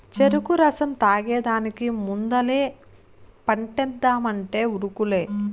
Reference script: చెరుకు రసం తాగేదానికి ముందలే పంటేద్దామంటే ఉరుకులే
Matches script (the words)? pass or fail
pass